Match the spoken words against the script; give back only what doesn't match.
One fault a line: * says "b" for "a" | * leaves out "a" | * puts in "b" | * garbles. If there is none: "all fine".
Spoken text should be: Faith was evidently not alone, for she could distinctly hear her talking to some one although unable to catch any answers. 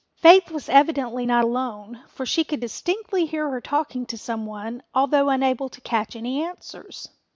all fine